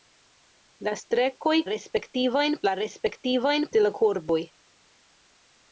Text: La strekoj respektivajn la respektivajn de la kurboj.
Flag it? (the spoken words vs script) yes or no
no